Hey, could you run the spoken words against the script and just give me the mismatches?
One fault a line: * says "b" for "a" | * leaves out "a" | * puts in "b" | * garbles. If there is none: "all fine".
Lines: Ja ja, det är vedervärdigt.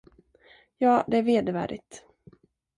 * leaves out "ja"